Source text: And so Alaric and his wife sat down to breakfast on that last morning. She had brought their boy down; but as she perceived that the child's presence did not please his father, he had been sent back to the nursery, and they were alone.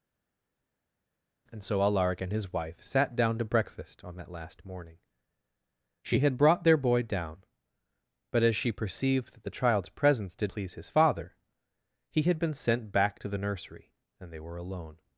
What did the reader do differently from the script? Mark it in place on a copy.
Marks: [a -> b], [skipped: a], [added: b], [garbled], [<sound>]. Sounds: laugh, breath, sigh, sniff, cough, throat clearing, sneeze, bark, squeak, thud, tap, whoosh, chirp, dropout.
And so Alaric and his wife sat down to breakfast on that last morning. She had brought their boy down; but as she perceived that the child's presence did [skipped: not] please his father, he had been sent back to the nursery, and they were alone.